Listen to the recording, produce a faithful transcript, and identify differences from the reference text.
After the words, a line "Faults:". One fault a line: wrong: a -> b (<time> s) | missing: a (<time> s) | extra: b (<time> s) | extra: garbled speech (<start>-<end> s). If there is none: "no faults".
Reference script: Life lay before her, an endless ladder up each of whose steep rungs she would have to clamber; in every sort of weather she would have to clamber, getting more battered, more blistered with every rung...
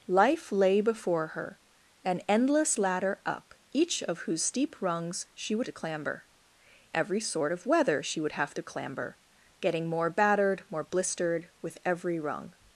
Life lay before her, an endless ladder up each of whose steep rungs she would to clamber; every sort of weather she would have to clamber, getting more battered, more blistered with every rung...
Faults:
missing: have (5.7 s)
missing: in (6.3 s)